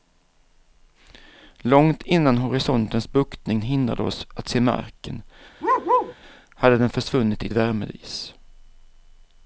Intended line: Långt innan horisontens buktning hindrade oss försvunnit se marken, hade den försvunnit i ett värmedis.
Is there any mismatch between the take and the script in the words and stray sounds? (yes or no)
yes